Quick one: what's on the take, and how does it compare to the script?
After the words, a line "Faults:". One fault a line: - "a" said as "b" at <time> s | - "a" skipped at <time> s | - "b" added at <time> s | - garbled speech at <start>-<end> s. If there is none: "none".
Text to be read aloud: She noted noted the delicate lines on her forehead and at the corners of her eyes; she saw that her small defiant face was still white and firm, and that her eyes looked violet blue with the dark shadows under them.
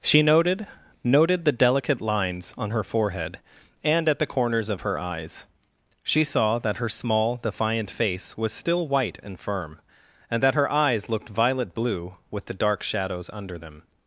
She noted noted the delicate lines on her forehead and at the corners of her eyes; she saw that her small defiant face was still white and firm, and that her eyes looked violet blue with the dark shadows under them.
Faults:
none